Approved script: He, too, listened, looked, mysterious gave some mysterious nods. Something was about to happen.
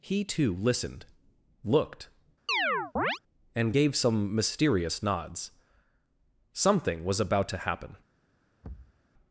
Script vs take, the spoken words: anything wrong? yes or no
yes